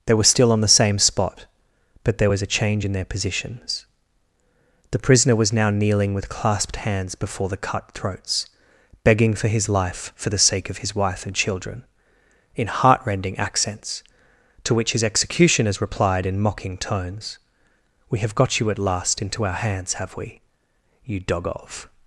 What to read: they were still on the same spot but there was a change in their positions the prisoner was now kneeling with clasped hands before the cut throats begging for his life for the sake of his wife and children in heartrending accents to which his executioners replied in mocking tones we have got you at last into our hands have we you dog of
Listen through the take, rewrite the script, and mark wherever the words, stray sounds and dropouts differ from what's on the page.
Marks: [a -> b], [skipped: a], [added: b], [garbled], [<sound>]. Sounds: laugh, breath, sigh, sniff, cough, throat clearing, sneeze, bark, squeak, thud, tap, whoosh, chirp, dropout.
they were still on the same spot but there was a change in their positions the prisoner was now kneeling with clasped hands before the cut throats begging for his life for the sake of his wife and children in heartrending accents to which his executioners replied in mocking tones we have got you at last into our hands have we you dog of